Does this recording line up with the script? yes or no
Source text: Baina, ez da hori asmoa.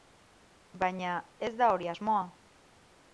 yes